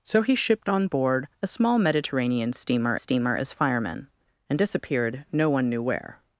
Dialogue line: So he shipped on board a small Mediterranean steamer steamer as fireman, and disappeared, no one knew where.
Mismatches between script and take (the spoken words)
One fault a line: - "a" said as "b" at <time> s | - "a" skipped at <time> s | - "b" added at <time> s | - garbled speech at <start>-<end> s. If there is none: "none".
none